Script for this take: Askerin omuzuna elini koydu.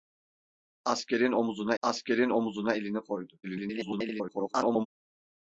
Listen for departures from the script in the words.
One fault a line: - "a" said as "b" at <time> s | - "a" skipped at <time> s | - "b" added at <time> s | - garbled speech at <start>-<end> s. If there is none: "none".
- "askerin omuzuna" added at 1.8 s
- garbled speech at 3.4-4.9 s